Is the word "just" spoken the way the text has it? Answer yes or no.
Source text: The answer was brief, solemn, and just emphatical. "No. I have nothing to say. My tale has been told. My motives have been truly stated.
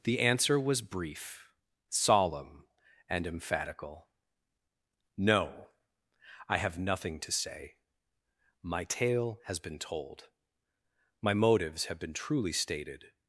no